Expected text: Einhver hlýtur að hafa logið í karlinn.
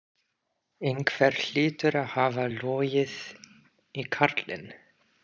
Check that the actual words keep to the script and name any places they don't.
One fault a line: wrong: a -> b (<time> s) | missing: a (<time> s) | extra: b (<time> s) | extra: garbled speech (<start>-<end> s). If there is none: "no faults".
no faults